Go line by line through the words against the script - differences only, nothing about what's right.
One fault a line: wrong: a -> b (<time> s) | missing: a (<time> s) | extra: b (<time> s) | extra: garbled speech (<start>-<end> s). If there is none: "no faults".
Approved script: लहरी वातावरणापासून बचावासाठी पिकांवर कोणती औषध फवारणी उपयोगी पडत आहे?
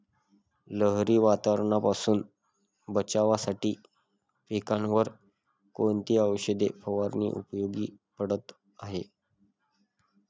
no faults